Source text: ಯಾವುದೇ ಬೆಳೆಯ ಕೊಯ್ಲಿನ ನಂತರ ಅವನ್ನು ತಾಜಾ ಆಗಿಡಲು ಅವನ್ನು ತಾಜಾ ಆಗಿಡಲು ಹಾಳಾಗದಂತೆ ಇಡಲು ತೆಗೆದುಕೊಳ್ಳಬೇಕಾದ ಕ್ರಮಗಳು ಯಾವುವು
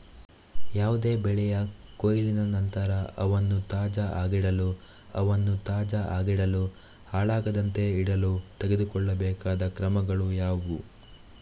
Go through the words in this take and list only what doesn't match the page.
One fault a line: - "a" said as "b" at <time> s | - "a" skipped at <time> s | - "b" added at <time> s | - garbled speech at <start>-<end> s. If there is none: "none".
none